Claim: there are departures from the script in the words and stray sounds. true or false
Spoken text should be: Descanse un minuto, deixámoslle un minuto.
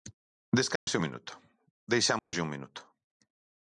true